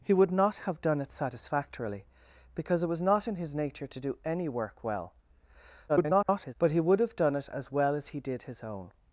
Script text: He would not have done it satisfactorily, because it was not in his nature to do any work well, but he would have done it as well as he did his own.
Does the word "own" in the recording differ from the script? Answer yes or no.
no